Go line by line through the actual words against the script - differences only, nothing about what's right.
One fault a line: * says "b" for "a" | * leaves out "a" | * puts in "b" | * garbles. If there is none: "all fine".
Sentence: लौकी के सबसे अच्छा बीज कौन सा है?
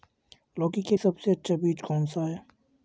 all fine